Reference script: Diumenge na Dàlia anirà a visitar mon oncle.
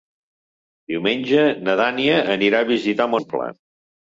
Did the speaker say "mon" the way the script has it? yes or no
no